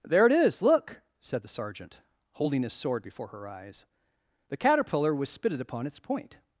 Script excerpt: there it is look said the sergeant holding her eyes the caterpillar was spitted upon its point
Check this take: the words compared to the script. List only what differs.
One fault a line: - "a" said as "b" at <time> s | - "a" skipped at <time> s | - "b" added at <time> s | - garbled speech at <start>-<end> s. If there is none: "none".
- "his sword before" added at 2.6 s